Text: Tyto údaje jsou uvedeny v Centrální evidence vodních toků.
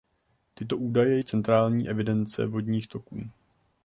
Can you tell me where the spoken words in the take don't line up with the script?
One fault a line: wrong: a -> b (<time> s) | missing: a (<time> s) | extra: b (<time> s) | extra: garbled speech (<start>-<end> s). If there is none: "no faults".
missing: jsou uvedeny (1.2 s)